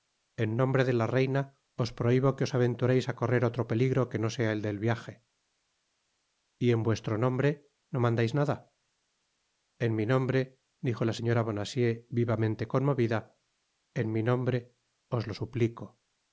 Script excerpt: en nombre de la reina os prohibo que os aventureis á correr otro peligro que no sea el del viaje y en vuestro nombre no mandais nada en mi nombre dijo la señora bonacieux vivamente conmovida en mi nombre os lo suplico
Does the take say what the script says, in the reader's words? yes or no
yes